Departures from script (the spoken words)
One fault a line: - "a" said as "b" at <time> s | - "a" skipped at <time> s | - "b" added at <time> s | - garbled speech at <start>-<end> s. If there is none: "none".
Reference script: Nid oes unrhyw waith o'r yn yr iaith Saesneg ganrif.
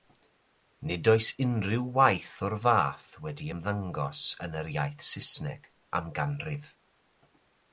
- "fath wedi ymddangos" added at 2.6 s
- "am" added at 6.0 s